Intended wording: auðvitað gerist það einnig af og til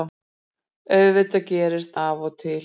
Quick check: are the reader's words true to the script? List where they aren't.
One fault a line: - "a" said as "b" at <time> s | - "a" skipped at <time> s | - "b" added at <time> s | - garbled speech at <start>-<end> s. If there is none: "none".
- "það einnig" skipped at 1.9 s